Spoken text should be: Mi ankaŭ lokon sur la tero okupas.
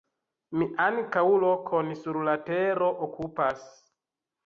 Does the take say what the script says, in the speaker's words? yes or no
yes